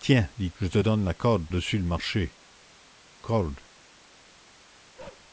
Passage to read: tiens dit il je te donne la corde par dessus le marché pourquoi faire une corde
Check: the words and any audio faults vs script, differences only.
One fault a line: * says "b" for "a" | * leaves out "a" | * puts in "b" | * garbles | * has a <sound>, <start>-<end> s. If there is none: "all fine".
* leaves out "il"
* leaves out "par"
* leaves out "pourquoi faire une"
* has a bark, 5.0-5.3 s